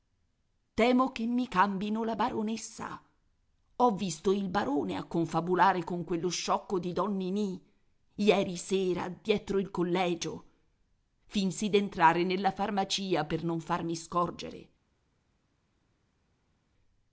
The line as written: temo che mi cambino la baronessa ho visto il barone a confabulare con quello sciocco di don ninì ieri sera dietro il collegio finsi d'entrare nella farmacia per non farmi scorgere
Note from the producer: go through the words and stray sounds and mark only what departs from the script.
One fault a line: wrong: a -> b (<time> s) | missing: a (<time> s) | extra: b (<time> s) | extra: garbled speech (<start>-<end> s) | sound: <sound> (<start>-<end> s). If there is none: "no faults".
no faults